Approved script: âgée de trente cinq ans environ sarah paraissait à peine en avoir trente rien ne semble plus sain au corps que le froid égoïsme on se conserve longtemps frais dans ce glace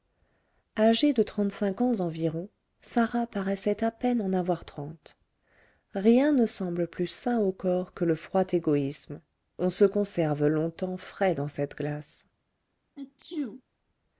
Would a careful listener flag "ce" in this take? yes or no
yes